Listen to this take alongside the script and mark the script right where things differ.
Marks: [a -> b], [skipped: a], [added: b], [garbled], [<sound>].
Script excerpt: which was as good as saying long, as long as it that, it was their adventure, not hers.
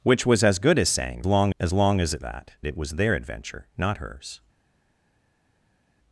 which was as good as saying long, as long as it that, it was their adventure, not hers.